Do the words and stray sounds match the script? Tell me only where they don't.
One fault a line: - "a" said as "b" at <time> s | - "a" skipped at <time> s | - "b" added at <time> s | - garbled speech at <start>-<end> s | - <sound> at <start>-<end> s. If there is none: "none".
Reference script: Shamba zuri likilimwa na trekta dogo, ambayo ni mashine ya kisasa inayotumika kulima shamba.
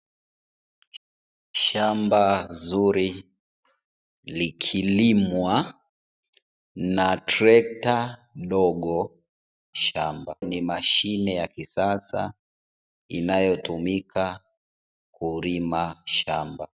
- "ambayo" said as "shamba" at 9.7 s